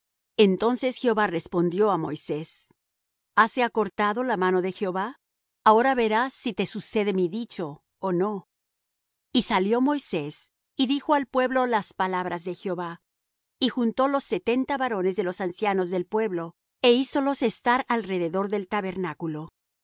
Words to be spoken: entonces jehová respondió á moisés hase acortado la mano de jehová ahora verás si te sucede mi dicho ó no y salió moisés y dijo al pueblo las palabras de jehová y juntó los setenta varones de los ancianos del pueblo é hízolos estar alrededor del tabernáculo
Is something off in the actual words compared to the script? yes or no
no